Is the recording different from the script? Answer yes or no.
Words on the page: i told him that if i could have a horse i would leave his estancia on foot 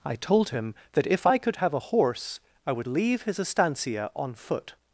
no